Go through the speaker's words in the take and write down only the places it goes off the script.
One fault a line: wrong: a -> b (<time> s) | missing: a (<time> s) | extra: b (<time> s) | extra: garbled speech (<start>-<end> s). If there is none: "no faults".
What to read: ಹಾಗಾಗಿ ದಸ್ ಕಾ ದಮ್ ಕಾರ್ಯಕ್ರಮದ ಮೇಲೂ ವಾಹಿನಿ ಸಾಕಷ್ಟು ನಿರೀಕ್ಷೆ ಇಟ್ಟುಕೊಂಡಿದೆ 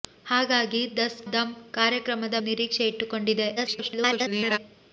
missing: ಕಾ (1.2 s)
missing: ಮೇಲೂ ವಾಹಿನಿ ಸಾಕಷ್ಟು (2.4 s)
extra: garbled speech (3.6-4.6 s)